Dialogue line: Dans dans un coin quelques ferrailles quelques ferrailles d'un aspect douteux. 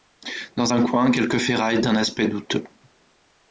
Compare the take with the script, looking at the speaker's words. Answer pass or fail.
fail